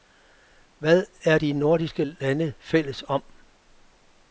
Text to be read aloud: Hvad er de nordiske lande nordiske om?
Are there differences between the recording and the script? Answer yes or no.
yes